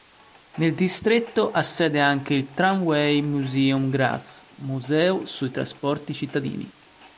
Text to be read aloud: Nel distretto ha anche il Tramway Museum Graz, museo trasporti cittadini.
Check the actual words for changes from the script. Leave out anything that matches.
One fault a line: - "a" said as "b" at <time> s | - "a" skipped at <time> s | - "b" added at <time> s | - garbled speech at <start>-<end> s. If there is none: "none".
- "sede" added at 1.6 s
- "sui" added at 5.3 s